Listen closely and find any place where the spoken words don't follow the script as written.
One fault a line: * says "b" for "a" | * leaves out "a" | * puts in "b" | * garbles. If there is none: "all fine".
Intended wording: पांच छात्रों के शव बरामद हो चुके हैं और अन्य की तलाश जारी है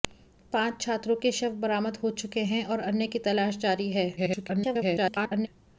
* garbles